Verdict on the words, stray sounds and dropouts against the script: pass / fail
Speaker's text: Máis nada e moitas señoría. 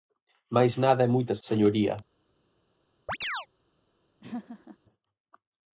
fail